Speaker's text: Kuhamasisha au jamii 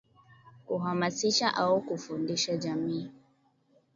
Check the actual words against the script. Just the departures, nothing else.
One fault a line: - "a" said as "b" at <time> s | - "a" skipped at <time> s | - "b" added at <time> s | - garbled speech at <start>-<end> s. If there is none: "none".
- "kufundisha" added at 1.8 s